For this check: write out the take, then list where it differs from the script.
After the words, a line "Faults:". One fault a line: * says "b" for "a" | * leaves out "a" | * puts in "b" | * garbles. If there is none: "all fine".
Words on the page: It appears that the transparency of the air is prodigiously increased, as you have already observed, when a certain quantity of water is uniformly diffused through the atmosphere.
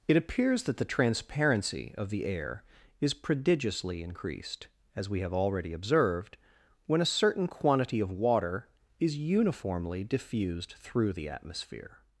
It appears that the transparency of the air is prodigiously increased, as we have already observed, when a certain quantity of water is uniformly diffused through the atmosphere.
Faults:
* says "we" for "you"